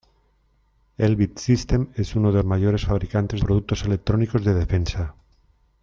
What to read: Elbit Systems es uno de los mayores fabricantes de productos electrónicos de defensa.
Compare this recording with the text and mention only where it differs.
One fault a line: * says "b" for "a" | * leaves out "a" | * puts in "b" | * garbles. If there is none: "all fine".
* leaves out "los"
* leaves out "de"